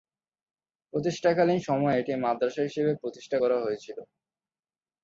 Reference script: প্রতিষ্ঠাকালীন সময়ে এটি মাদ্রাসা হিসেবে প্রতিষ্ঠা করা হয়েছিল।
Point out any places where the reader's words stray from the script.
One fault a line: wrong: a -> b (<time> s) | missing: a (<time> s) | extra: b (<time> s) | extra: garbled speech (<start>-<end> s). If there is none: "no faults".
no faults